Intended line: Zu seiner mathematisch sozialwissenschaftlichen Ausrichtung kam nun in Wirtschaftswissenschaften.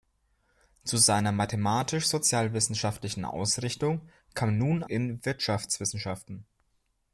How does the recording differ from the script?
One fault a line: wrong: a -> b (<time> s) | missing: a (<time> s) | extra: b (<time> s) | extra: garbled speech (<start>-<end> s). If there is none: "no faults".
no faults